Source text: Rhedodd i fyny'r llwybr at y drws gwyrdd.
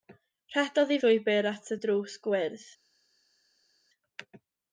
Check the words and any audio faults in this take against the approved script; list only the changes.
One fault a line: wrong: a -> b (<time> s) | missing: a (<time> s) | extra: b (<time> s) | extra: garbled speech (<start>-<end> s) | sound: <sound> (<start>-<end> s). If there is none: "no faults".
missing: fyny'r (1.0 s)